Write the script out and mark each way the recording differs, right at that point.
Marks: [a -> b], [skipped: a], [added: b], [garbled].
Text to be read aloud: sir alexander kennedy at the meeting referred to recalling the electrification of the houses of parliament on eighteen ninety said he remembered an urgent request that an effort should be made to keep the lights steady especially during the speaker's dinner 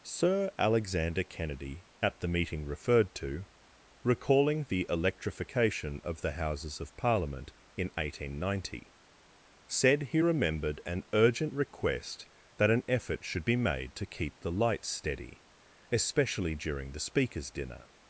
sir alexander kennedy at the meeting referred to recalling the electrification of the houses of parliament [on -> in] eighteen ninety said he remembered an urgent request that an effort should be made to keep the lights steady especially during the speaker's dinner